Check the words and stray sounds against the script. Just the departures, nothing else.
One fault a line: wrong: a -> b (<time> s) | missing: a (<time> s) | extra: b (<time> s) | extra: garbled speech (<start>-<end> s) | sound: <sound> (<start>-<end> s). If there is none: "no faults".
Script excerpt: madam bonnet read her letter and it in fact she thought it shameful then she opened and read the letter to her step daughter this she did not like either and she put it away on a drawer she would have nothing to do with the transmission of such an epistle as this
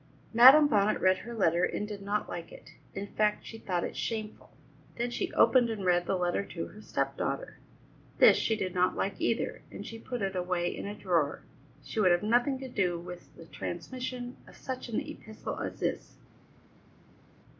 extra: did not like (1.9 s)
wrong: on -> in (10.7 s)